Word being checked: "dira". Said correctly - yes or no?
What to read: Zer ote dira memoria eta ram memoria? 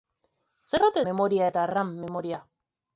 no